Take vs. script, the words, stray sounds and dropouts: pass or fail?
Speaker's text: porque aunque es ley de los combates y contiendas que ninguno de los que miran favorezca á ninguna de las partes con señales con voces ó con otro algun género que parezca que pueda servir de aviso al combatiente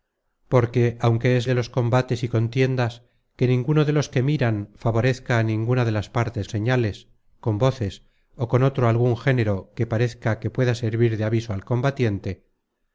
fail